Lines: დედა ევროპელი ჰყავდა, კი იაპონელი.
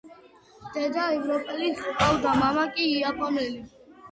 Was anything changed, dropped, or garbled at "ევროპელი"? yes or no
no